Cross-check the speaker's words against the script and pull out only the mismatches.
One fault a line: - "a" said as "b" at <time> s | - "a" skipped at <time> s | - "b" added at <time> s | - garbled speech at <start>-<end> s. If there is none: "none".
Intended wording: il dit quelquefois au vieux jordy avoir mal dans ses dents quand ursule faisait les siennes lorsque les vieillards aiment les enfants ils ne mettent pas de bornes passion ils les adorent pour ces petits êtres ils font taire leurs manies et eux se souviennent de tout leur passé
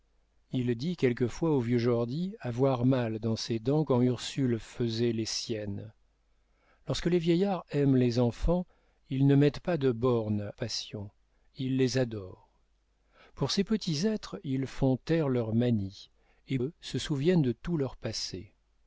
none